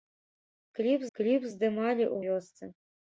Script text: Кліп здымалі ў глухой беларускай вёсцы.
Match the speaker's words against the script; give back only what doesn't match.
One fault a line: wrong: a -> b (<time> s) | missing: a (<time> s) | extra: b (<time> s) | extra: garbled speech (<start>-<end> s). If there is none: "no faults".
extra: кліп (1.2 s)
missing: глухой беларускай (2.2 s)